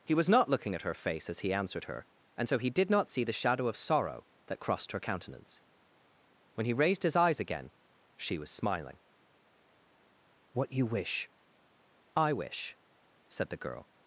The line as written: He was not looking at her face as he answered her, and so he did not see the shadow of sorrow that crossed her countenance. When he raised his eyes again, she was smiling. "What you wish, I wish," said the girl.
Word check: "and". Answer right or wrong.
right